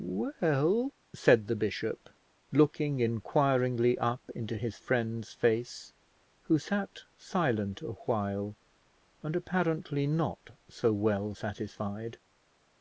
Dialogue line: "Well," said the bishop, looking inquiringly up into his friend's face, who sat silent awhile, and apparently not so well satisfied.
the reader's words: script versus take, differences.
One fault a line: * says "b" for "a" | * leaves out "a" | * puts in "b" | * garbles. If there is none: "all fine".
all fine